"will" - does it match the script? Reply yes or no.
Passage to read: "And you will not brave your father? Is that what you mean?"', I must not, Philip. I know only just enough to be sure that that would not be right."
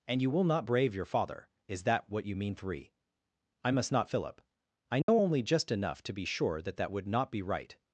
yes